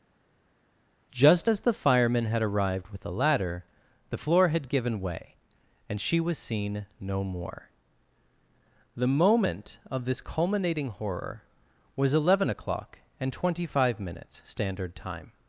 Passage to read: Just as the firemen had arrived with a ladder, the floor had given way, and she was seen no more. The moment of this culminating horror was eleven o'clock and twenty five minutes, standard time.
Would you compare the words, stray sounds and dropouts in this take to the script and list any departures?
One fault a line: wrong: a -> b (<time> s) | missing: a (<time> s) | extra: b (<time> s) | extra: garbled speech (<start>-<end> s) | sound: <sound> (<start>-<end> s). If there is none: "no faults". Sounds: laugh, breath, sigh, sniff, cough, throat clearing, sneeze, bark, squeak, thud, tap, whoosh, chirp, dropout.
no faults